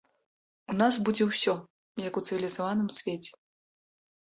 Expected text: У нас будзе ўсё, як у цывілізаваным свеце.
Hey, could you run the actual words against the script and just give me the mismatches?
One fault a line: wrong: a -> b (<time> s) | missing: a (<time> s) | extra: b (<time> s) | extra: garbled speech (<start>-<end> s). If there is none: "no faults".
no faults